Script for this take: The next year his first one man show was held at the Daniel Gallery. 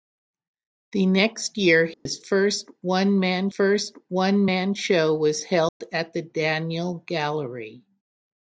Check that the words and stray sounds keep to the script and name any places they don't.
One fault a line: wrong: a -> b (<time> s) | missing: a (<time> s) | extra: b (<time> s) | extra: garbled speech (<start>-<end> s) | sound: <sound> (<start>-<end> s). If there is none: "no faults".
sound: dropout (1.9-2.1 s)
extra: first one man (3.5 s)
sound: dropout (5.7-5.8 s)